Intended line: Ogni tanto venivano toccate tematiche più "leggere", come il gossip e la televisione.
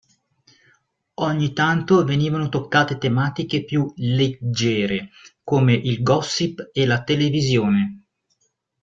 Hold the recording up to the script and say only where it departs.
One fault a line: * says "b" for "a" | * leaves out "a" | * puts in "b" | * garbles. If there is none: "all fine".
all fine